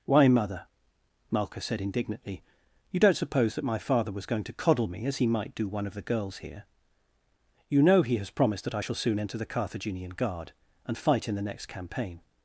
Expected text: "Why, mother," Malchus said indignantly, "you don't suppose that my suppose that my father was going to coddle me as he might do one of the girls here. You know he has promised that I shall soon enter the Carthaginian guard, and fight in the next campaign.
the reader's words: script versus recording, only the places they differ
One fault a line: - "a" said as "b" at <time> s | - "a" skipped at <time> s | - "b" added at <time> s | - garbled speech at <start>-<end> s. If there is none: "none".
- "suppose that my" skipped at 3.8 s